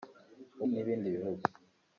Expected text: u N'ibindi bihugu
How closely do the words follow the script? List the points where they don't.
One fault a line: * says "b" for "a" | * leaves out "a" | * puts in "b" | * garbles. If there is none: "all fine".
all fine